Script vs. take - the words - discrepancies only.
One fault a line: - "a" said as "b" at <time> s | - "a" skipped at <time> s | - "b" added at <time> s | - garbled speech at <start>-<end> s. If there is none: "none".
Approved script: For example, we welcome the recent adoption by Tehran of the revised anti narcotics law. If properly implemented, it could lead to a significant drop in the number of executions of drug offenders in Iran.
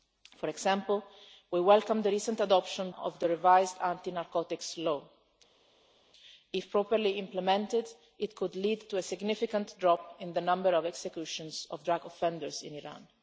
- "by Tehran" skipped at 2.9 s